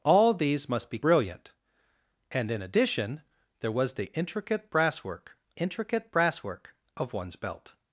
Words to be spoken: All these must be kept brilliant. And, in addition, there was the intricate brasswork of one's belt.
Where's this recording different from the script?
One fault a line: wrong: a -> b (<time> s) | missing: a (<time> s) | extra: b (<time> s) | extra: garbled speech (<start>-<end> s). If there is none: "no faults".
missing: kept (1.0 s)
extra: intricate brasswork (5.6 s)